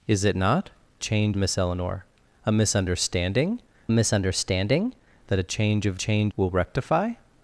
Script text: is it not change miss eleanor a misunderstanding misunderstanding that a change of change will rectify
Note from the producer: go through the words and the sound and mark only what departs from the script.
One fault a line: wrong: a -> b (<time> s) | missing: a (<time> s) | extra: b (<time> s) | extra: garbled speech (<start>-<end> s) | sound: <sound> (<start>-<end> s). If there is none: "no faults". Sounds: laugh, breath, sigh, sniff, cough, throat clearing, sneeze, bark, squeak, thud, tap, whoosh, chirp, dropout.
no faults